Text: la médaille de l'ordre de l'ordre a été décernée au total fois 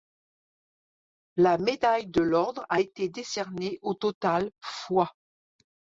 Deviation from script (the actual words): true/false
true